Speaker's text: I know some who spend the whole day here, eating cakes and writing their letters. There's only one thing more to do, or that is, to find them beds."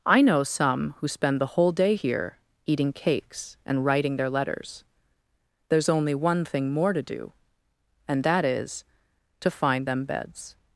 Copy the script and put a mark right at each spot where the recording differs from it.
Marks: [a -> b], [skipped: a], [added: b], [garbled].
I know some who spend the whole day here, eating cakes and writing their letters. There's only one thing more to do, [or -> and] that is, to find them beds."